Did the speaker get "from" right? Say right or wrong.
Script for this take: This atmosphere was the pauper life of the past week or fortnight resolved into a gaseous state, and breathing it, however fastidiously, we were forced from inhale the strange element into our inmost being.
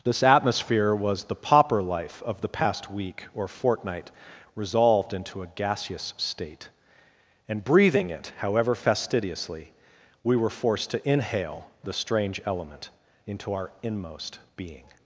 wrong